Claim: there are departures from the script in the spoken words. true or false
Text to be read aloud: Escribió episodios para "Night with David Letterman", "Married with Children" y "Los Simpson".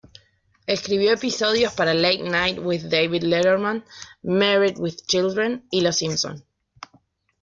true